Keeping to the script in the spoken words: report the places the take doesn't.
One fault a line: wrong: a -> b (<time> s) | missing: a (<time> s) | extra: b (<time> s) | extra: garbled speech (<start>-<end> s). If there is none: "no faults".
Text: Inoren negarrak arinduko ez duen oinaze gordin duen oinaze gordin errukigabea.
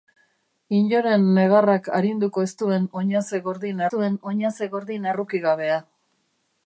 no faults